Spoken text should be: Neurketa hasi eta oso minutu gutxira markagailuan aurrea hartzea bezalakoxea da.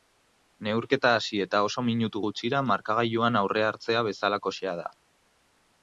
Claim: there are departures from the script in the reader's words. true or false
false